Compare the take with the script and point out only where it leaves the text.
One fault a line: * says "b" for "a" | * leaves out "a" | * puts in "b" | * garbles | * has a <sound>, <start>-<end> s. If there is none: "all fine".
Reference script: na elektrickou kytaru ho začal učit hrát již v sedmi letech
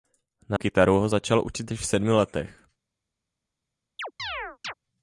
* leaves out "elektrickou"
* leaves out "hrát"
* has a chirp, 4.0-4.7 s